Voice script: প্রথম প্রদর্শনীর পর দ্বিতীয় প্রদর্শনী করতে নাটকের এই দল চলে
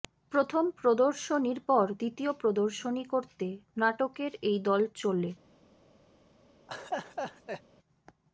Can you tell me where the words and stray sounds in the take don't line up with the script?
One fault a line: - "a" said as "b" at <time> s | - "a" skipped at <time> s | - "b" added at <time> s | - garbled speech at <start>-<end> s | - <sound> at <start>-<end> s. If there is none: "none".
- laugh at 6.7-7.6 s